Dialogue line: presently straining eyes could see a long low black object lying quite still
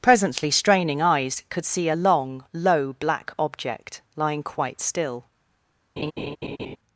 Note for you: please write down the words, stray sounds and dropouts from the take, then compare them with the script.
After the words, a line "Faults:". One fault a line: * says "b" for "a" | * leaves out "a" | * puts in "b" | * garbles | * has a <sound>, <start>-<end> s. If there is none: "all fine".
presently straining eyes could see a long low black object lying quite still
Faults:
* has a laugh, 6.0-6.8 s